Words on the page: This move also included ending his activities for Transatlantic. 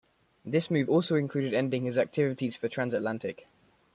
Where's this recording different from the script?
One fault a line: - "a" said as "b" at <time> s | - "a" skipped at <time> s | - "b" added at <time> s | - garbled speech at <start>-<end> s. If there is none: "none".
none